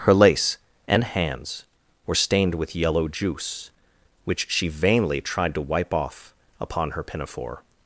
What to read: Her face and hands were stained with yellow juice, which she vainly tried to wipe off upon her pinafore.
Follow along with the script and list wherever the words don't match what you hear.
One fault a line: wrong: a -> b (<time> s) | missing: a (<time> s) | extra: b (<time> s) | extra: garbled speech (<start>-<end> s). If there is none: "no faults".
wrong: face -> lace (0.1 s)